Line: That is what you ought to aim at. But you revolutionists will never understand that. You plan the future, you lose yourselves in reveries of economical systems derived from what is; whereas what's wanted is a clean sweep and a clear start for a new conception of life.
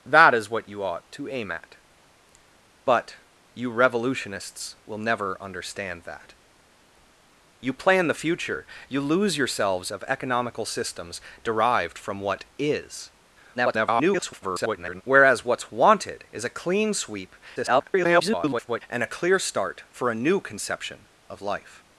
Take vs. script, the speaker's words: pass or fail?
fail